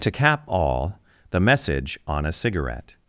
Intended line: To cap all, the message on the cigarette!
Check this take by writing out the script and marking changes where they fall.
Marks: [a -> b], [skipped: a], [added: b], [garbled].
To cap all, the message on [the -> a] cigarette!